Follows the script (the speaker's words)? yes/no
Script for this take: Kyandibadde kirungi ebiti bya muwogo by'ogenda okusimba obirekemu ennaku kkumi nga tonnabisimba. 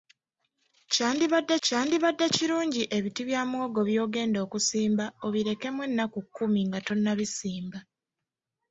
no